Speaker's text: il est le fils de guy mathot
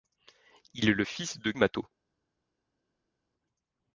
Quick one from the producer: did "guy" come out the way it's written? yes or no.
no